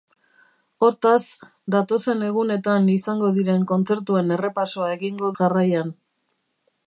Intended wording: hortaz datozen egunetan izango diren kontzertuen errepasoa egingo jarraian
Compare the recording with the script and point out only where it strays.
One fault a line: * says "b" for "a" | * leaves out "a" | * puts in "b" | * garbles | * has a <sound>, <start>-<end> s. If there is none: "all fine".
all fine